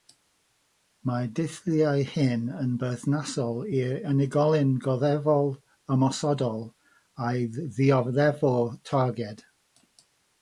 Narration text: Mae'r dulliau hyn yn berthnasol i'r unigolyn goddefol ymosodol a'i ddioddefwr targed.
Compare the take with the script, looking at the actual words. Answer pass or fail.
pass